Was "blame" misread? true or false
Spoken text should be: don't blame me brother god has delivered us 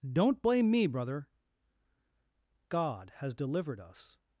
false